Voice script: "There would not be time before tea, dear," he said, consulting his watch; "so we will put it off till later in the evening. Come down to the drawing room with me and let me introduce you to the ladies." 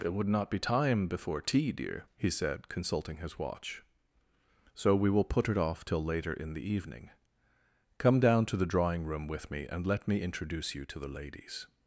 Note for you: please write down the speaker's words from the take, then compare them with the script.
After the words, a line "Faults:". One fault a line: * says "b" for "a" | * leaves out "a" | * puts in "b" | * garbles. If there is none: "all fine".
"It would not be time before tea, dear," he said, consulting his watch; "so we will put it off till later in the evening. Come down to the drawing room with me and let me introduce you to the ladies."
Faults:
* says "It" for "There"